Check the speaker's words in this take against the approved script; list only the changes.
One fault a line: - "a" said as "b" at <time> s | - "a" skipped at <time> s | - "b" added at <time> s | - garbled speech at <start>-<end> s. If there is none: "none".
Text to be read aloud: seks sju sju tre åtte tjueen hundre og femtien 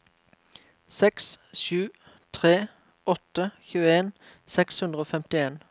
- "sju" skipped at 1.9 s
- "seks" added at 4.6 s